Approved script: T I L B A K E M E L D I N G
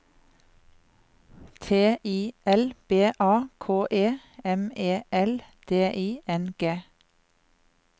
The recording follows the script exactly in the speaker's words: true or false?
true